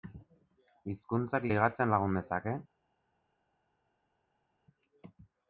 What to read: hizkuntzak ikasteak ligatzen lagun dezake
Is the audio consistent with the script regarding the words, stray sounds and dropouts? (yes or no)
no